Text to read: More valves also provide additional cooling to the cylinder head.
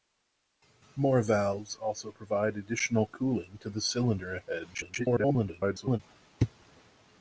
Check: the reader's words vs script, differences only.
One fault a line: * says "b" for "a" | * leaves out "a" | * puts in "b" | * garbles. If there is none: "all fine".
* garbles